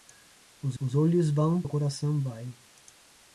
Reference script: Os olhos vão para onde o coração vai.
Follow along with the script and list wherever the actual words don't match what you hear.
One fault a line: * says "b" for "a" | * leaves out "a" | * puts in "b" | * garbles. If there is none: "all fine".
* puts in "os"
* leaves out "para onde"